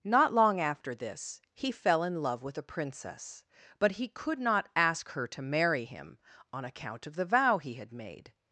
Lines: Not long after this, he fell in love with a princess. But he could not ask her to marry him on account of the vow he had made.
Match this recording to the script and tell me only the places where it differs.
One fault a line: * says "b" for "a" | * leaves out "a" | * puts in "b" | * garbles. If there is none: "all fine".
all fine